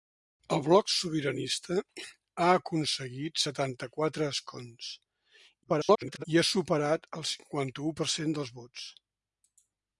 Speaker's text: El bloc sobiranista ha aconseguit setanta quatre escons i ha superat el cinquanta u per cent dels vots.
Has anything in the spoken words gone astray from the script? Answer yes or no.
yes